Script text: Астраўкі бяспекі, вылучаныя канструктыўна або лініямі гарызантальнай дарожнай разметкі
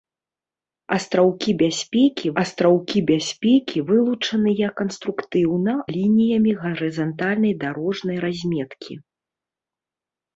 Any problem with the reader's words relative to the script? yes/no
yes